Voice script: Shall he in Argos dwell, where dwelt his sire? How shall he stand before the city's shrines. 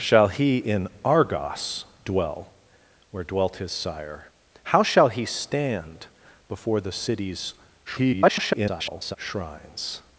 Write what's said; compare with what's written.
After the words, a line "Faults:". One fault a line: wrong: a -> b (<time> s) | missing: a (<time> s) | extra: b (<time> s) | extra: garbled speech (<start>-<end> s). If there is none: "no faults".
Shall he in Argos dwell, where dwelt his sire? How shall he stand before the city's [garbled] shrines.
Faults:
extra: garbled speech (7.9-9.2 s)